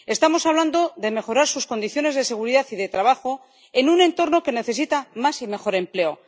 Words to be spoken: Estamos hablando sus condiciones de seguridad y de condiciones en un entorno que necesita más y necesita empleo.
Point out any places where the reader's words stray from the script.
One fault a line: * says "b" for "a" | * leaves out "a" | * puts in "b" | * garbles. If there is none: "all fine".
* puts in "de mejorar"
* says "trabajo" for "condiciones"
* says "mejor" for "necesita"